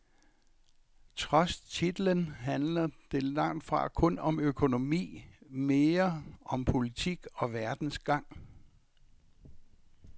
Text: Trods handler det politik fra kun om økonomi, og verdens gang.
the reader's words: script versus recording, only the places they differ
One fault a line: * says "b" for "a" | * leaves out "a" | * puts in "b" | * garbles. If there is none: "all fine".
* puts in "titlen"
* says "langt" for "politik"
* puts in "mere om politik"